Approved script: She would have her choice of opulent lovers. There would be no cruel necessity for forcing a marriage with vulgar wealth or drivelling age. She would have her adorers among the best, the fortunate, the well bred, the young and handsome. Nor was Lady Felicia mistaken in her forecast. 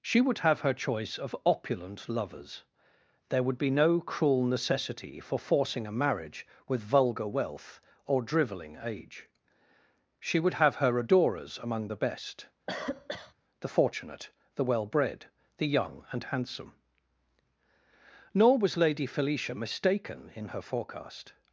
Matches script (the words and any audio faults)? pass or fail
fail